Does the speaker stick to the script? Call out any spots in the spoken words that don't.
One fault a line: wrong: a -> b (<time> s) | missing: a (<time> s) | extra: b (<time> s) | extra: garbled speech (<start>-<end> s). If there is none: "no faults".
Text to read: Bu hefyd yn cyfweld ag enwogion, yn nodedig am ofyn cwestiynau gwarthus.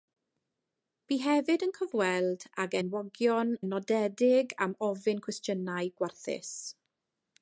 no faults